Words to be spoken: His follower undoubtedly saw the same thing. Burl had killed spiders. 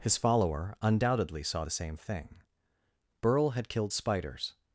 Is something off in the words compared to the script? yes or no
no